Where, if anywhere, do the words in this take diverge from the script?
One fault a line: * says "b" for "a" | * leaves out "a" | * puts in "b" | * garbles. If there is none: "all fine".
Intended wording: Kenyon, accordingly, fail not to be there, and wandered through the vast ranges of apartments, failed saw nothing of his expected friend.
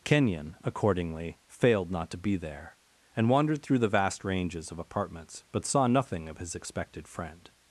* says "failed" for "fail"
* says "but" for "failed"